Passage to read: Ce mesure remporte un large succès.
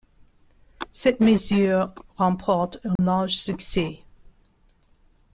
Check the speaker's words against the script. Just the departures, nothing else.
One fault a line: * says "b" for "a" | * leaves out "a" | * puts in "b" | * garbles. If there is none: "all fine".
* says "Cette" for "Ce"